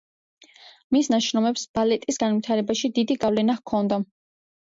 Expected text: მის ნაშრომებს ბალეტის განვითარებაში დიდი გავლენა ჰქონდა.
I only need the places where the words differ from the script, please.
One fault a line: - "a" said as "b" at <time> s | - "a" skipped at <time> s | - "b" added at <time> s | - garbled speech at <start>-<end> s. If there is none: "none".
none